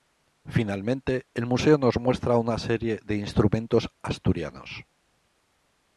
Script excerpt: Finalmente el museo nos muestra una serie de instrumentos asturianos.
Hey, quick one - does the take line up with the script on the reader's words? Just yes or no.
yes